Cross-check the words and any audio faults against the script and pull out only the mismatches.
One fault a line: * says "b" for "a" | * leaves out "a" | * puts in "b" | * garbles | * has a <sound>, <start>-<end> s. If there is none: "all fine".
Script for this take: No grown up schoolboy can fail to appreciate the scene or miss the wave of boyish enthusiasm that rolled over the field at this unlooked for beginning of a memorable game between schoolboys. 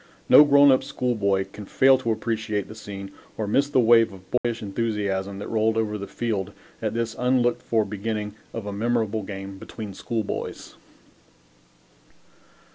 * has a dropout, 4.4-4.4 s